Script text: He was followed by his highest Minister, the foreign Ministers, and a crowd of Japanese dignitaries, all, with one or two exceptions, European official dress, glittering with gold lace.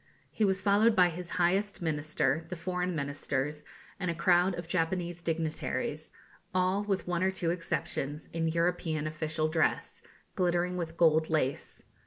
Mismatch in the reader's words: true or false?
true